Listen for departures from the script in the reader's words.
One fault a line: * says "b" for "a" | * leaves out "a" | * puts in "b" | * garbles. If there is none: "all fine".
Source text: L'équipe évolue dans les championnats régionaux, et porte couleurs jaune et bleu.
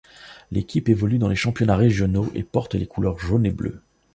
* puts in "les"